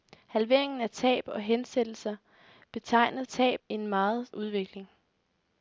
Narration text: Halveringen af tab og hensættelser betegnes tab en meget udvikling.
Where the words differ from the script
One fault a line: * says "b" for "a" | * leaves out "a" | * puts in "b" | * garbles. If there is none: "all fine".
all fine